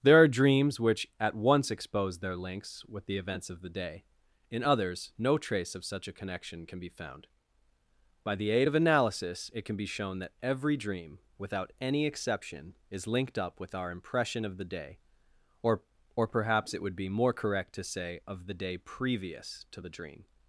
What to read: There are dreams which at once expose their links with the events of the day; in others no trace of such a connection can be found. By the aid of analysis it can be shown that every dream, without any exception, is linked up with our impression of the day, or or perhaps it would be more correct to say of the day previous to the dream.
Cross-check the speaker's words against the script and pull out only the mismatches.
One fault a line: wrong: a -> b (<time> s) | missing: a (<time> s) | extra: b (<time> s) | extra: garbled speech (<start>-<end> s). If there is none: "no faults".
no faults